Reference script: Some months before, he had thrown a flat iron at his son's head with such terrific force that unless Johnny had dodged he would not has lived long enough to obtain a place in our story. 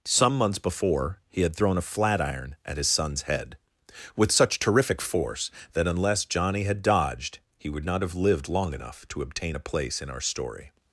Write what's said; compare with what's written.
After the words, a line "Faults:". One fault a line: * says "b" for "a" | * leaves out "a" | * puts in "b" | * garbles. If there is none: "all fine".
Some months before, he had thrown a flat iron at his son's head with such terrific force that unless Johnny had dodged he would not have lived long enough to obtain a place in our story.
Faults:
* says "have" for "has"